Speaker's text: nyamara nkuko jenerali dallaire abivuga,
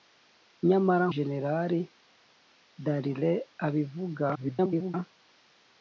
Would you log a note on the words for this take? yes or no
yes